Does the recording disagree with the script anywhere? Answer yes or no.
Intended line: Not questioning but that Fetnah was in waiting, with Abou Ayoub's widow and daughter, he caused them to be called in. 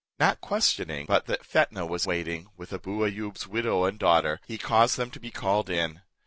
yes